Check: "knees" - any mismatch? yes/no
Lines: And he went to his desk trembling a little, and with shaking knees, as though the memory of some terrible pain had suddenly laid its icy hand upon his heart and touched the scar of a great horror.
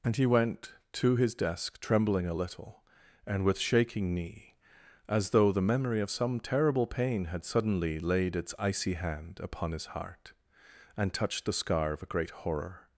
yes